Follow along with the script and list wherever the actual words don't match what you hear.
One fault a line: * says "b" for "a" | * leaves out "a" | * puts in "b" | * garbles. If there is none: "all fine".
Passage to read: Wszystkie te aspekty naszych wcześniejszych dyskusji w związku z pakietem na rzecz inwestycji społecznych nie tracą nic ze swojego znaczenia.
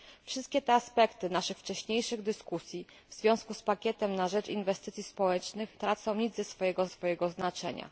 * leaves out "nie"
* puts in "swojego"